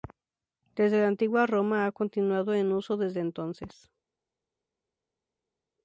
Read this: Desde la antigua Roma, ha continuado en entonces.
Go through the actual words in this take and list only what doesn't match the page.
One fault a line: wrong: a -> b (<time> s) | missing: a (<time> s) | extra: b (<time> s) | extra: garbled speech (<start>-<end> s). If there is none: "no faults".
extra: uso desde (2.7 s)